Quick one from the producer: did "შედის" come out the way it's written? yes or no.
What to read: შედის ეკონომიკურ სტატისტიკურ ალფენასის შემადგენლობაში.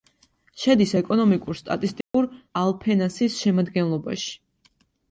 yes